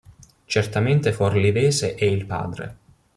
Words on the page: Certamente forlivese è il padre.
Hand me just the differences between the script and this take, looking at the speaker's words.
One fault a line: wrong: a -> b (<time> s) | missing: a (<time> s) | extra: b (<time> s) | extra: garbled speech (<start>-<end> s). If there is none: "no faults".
no faults